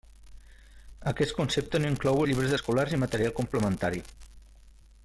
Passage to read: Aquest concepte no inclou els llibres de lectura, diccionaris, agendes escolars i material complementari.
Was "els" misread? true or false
true